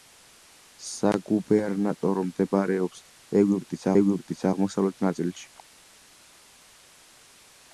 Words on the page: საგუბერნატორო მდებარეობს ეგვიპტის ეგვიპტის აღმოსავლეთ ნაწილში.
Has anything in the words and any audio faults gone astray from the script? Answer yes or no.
no